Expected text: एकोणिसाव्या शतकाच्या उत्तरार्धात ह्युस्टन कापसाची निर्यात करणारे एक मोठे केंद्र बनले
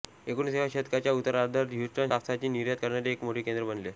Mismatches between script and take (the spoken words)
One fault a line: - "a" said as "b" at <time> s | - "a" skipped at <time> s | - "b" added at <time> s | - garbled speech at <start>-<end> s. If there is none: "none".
none